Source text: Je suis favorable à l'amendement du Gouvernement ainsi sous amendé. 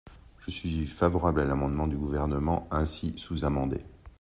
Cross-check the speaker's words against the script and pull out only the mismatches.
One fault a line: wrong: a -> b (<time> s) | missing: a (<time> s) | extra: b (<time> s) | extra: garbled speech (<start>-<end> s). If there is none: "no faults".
no faults